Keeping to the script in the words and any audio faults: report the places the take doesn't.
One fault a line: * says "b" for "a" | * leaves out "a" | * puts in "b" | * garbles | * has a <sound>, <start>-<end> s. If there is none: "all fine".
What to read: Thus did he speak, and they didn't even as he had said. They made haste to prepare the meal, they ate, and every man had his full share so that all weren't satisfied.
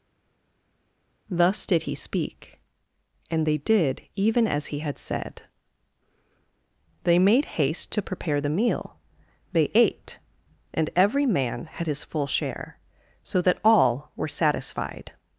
* says "did" for "didn't"
* says "were" for "weren't"